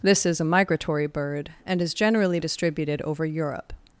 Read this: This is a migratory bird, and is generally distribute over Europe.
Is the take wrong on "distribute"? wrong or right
wrong